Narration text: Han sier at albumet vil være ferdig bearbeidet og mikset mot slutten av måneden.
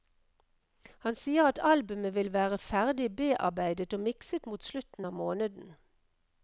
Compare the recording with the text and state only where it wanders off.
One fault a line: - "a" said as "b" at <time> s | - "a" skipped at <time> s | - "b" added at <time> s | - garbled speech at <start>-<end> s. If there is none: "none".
none